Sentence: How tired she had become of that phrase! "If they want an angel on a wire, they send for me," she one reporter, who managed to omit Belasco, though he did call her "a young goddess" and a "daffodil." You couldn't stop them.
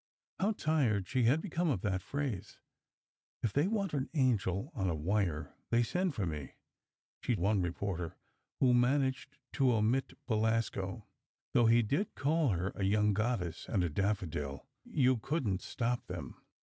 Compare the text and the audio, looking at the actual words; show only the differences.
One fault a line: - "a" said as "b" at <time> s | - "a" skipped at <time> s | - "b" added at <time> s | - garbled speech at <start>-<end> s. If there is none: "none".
none